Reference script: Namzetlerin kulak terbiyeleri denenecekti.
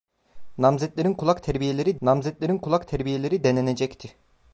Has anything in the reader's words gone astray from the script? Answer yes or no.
yes